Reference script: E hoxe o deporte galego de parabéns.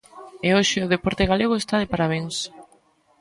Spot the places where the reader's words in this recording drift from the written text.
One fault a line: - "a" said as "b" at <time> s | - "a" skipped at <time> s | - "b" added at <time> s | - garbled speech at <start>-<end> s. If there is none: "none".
- "está" added at 1.6 s